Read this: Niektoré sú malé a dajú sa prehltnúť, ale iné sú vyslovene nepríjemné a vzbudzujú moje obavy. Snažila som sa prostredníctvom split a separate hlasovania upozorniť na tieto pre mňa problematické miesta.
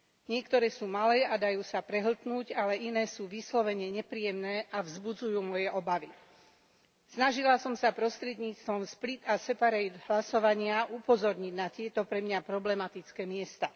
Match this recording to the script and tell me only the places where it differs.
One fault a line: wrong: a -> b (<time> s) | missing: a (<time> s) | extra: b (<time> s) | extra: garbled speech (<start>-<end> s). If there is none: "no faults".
no faults